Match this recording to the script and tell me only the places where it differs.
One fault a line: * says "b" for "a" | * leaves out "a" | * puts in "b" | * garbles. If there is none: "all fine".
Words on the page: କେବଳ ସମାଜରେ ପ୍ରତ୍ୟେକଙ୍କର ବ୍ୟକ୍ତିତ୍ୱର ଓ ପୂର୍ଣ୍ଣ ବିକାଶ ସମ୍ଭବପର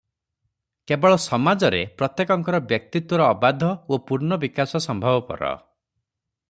* puts in "ଅବାଧ"